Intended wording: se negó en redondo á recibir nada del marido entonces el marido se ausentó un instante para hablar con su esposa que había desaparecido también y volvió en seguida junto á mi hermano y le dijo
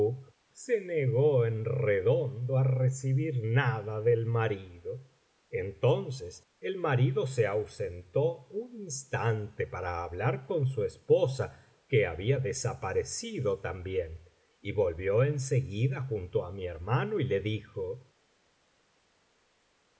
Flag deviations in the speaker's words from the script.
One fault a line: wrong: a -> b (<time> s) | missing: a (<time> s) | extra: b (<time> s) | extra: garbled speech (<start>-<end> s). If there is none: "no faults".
no faults